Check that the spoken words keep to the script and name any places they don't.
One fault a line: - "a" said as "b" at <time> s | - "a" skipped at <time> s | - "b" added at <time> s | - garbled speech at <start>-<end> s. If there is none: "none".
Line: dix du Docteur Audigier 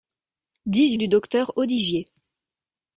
none